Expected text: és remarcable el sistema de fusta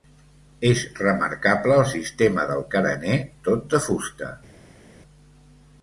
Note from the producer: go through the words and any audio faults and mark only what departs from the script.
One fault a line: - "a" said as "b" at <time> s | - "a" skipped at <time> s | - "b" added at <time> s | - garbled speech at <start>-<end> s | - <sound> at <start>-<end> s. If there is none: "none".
- "del carener tot" added at 2.5 s